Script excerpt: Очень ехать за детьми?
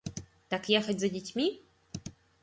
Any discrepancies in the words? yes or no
yes